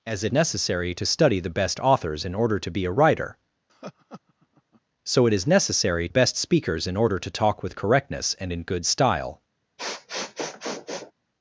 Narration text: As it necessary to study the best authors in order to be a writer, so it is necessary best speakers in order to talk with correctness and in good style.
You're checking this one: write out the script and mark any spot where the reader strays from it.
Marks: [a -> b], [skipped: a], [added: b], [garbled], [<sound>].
As it necessary to study the best authors in order to be a writer, [laugh] so it is necessary best speakers in order to talk with correctness and in good style. [sniff]